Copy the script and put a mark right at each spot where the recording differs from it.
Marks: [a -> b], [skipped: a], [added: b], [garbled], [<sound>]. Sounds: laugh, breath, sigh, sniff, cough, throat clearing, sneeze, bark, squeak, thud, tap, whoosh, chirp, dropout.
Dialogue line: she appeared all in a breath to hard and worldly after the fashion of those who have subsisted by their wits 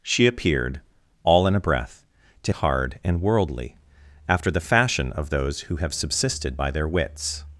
she appeared all in a breath to hard and worldly after the fashion of those who have subsisted by their wits